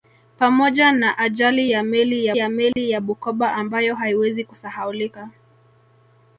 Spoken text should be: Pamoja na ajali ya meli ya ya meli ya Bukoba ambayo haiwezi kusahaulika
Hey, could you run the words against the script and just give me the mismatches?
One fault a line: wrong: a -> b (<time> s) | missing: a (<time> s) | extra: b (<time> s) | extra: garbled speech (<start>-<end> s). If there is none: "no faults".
no faults